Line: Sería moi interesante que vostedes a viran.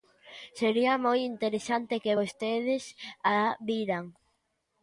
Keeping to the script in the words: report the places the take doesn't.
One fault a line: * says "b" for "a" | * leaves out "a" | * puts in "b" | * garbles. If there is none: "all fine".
all fine